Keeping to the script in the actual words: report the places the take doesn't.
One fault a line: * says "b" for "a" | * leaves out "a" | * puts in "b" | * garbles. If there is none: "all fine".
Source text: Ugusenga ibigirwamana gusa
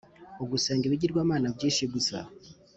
* puts in "byinshi"